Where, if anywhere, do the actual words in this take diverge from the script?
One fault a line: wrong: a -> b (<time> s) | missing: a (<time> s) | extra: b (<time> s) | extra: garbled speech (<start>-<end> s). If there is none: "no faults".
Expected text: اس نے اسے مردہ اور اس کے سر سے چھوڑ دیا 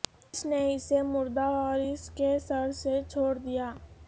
no faults